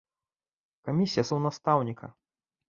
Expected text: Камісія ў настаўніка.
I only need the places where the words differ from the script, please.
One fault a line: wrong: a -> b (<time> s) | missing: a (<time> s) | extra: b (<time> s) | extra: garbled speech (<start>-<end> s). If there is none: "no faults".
no faults